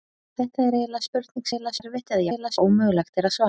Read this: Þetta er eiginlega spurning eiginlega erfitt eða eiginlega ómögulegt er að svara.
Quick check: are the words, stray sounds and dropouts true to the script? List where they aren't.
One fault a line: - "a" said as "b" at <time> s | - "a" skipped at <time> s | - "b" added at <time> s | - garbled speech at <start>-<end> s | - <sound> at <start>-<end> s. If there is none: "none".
none